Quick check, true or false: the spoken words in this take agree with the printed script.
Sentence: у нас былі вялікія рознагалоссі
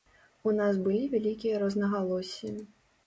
true